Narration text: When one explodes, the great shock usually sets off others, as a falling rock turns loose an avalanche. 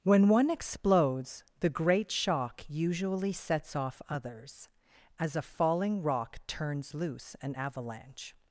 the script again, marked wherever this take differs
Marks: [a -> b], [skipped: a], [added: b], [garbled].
When one explodes, the great shock usually sets off others, as a falling rock turns loose an avalanche.